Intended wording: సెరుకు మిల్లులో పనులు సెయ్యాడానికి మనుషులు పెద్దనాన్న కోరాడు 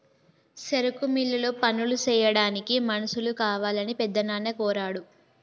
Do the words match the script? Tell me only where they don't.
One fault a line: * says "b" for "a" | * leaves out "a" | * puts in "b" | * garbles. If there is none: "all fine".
* puts in "కావాలని"